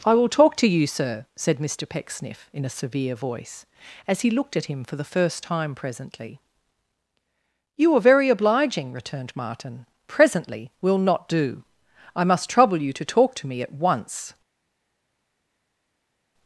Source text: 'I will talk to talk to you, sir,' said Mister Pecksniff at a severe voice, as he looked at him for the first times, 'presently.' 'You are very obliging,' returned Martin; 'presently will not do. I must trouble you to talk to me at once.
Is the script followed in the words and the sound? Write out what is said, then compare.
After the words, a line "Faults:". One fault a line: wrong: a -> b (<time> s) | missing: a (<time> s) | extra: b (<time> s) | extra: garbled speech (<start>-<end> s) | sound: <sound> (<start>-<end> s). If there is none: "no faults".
'I will talk to you, sir,' said Mister Pecksniff in a severe voice, as he looked at him for the first time, 'presently.' 'You are very obliging,' returned Martin; 'presently will not do. I must trouble you to talk to me at once.
Faults:
missing: talk to (0.7 s)
wrong: at -> in (2.5 s)
wrong: times -> time (5.4 s)